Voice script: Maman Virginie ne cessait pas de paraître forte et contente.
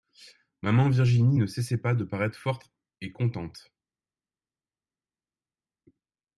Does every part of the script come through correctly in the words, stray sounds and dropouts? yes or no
yes